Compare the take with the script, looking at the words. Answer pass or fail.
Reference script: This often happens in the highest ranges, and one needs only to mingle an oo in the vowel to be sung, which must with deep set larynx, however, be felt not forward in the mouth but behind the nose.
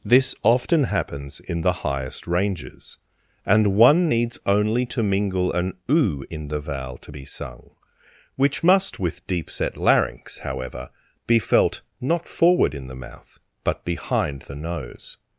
pass